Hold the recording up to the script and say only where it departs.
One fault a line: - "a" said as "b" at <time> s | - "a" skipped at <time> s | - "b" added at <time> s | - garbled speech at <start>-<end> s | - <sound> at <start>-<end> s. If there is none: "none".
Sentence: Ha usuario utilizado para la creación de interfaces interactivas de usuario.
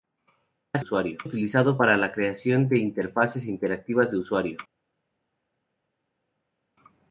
none